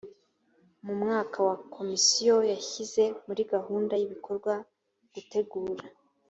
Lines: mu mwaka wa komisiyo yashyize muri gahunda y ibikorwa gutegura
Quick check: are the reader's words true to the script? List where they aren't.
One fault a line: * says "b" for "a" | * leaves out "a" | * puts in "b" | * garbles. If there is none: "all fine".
all fine